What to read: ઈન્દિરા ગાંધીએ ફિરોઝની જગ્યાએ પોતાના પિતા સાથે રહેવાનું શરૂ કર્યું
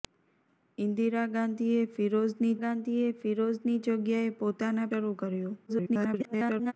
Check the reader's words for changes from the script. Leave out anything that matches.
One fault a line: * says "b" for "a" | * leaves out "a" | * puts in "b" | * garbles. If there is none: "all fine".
* puts in "ગાંધીએ ફિરોઝની"
* leaves out "પિતા સાથે રહેવાનું"
* garbles